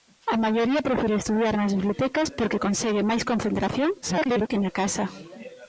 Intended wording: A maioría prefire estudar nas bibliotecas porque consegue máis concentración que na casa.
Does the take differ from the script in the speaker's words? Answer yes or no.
yes